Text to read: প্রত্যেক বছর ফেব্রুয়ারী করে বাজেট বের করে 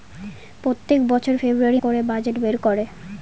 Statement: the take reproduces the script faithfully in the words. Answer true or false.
true